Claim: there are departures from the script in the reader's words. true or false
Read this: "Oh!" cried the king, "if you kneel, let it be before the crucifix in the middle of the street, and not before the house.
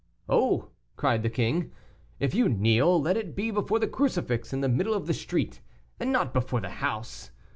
false